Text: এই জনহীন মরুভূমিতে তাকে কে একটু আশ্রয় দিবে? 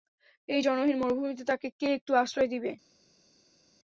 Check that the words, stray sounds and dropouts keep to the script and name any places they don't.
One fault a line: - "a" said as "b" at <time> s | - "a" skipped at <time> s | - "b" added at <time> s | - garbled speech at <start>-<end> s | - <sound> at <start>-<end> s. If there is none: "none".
none